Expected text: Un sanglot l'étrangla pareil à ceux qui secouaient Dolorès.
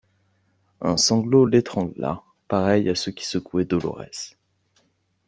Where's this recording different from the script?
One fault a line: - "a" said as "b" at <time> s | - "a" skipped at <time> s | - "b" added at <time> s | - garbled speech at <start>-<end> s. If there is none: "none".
none